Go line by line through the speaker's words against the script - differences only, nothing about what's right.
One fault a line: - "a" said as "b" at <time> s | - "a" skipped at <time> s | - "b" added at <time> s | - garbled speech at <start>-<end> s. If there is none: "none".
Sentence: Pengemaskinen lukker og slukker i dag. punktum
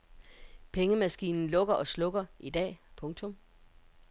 none